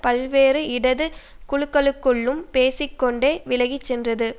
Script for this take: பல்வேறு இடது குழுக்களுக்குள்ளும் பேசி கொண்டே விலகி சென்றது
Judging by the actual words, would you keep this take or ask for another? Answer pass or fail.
pass